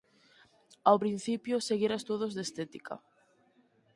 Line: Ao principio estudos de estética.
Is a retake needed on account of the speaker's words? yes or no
yes